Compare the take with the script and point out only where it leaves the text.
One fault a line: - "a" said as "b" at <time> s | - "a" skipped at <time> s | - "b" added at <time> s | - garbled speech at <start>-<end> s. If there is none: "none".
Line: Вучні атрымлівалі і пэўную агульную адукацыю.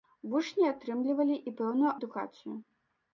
- "агульную" skipped at 1.9 s